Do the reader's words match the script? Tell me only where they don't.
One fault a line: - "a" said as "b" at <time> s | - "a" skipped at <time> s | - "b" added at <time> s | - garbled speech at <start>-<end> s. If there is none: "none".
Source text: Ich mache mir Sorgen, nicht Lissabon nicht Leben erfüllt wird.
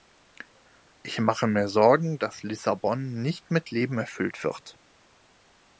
- "nicht" said as "dass" at 2.2 s
- "mit" added at 3.5 s